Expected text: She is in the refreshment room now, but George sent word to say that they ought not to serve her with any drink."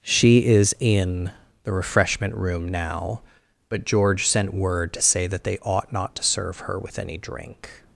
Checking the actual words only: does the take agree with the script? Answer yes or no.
yes